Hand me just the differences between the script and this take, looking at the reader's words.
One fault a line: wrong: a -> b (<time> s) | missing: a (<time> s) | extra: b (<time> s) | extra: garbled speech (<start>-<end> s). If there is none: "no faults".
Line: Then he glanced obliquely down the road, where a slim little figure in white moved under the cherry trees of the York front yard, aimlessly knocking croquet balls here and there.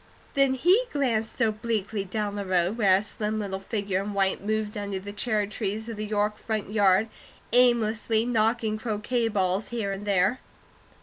no faults